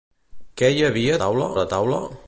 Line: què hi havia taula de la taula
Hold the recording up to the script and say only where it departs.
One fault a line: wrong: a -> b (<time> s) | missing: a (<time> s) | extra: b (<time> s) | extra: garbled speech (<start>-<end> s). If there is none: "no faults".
no faults